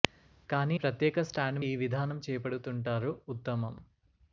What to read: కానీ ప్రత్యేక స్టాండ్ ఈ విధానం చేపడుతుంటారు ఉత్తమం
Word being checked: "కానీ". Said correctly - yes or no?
yes